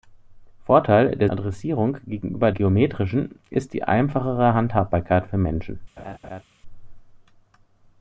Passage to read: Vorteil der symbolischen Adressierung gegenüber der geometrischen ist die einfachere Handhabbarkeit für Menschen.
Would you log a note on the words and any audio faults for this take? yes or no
yes